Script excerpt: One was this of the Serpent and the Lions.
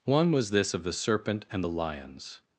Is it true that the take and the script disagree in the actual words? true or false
false